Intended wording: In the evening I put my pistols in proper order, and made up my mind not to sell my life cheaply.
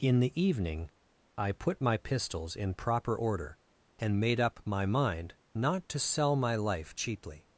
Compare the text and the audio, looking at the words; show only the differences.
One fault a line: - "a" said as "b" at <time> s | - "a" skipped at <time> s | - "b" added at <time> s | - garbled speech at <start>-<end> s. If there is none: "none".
none